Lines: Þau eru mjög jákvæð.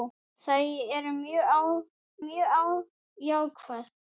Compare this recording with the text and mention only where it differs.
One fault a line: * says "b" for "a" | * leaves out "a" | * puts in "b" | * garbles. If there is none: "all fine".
* puts in "mjög"